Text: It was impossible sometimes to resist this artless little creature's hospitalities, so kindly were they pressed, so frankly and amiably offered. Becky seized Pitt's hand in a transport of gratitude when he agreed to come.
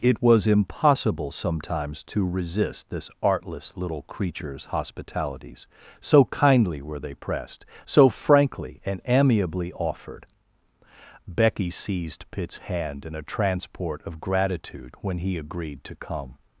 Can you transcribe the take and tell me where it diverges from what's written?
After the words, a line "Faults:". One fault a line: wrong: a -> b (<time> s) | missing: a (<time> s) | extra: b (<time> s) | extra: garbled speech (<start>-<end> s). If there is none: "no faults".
It was impossible sometimes to resist this artless little creature's hospitalities, so kindly were they pressed, so frankly and amiably offered. Becky seized Pitt's hand in a transport of gratitude when he agreed to come.
Faults:
no faults